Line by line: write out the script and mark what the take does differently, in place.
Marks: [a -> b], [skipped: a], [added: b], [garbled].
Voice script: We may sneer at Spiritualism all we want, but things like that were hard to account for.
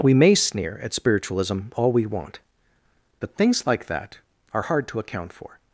We may sneer at Spiritualism all we want, but things like that [were -> are] hard to account for.